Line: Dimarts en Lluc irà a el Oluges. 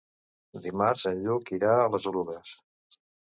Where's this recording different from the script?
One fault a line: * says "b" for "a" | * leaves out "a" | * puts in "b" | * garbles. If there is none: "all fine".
* says "les" for "el"